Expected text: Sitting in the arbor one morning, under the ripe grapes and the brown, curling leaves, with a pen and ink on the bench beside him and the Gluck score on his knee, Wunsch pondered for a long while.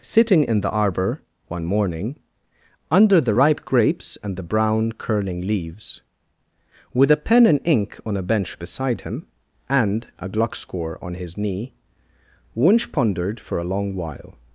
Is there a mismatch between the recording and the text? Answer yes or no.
yes